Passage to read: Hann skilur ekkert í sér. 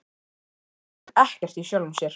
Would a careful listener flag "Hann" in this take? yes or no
no